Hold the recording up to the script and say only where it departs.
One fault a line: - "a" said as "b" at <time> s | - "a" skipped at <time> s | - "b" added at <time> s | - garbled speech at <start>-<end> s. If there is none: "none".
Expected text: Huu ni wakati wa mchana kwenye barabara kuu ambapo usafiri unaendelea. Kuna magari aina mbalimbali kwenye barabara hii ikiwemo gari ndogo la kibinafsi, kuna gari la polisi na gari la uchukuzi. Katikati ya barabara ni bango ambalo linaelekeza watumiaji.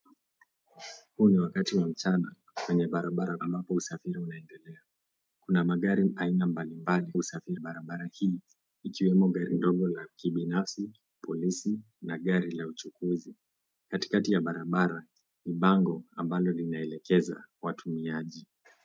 - "kuu" skipped at 3.4 s
- "kwenye" said as "usafiri" at 7.2 s
- "kuna gari la" skipped at 10.9 s